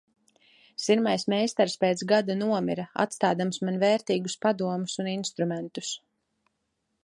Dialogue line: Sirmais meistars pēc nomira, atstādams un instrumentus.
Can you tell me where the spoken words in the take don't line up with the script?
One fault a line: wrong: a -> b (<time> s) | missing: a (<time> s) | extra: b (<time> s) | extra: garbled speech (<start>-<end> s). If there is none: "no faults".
extra: gada (2.1 s)
extra: man vērtīgus padomus (3.7 s)